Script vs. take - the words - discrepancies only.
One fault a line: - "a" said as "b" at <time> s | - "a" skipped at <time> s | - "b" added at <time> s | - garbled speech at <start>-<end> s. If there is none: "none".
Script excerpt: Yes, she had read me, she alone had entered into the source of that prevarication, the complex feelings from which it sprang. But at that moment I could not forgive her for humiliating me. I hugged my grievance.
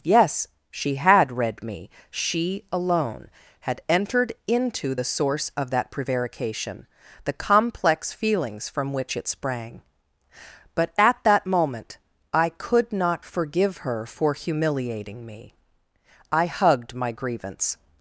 none